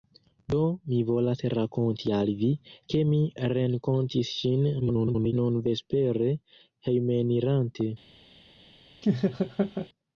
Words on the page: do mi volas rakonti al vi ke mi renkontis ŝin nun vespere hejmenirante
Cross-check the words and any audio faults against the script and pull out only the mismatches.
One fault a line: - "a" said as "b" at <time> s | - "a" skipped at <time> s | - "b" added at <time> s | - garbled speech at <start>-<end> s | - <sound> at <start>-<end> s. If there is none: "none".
- garbled speech at 4.8-5.3 s
- laugh at 9.0-9.9 s